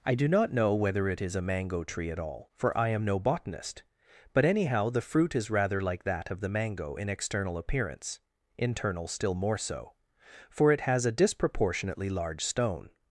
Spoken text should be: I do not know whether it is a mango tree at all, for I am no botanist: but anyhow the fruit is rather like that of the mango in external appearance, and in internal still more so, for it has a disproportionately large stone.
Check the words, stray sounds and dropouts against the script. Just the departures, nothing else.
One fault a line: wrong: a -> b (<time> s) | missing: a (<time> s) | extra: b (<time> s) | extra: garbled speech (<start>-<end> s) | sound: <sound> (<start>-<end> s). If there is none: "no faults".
missing: and in (8.2 s)